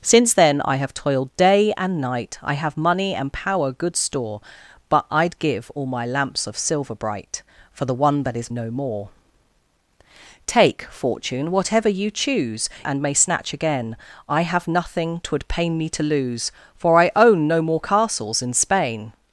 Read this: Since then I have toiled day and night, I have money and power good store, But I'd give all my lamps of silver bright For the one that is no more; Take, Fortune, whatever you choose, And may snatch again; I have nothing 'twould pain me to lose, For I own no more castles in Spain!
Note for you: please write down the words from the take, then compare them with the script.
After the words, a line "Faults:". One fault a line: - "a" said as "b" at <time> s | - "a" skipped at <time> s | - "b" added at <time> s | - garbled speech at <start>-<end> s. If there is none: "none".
Since then I have toiled day and night, I have money and power good store, But I'd give all my lamps of silver bright For the one that is no more; Take, Fortune, whatever you choose, And may snatch again; I have nothing 'twould pain me to lose, For I own no more castles in Spain!
Faults:
none